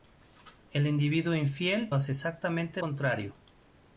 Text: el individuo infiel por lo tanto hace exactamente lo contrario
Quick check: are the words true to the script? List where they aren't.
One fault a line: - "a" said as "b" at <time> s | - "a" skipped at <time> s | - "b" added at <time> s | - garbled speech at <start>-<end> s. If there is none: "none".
- "por lo tanto" skipped at 1.9 s
- "lo" skipped at 2.8 s